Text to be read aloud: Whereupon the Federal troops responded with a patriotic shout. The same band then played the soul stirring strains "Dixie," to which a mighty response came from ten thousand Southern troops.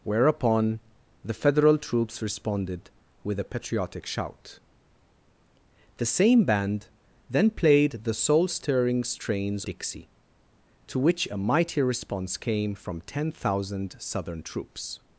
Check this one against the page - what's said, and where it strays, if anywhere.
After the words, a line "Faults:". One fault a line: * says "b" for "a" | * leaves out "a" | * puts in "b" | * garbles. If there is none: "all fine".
Whereupon the Federal troops responded with a patriotic shout. The same band then played the soul stirring strains "Dixie," to which a mighty response came from ten thousand Southern troops.
Faults:
all fine